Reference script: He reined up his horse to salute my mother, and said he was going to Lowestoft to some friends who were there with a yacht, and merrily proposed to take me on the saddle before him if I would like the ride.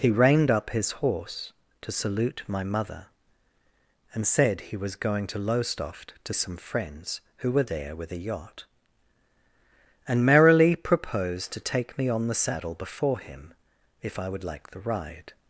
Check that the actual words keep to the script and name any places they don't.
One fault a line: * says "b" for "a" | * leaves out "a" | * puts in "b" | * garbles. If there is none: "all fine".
all fine